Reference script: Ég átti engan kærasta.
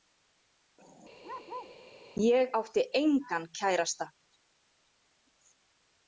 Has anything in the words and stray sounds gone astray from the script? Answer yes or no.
yes